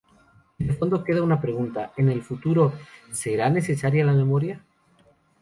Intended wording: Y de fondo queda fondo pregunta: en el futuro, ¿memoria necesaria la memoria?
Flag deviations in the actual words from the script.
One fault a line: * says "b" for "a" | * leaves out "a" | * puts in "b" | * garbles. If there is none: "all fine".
* says "una" for "fondo"
* says "será" for "memoria"